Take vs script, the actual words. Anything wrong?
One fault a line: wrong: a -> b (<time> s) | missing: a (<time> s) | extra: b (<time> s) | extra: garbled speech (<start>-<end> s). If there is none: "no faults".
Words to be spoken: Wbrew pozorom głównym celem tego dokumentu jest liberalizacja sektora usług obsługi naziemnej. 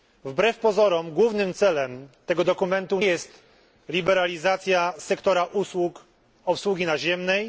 no faults